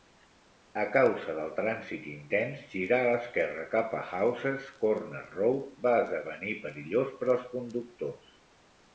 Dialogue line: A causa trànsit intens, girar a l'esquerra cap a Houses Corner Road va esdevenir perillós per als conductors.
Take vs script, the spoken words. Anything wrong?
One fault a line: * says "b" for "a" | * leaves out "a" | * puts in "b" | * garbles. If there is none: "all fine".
* puts in "del"